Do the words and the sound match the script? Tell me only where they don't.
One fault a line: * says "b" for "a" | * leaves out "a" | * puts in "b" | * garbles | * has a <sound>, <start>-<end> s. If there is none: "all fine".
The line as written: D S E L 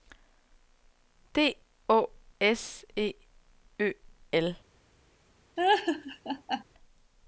* puts in "Å"
* puts in "Ø"
* has a laugh, 5.6-6.6 s